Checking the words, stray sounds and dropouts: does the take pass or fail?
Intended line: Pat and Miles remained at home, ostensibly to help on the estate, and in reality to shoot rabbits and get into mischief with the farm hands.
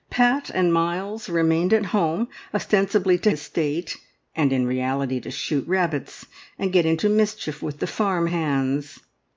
fail